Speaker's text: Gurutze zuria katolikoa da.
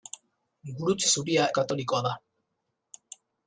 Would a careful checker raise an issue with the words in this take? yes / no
no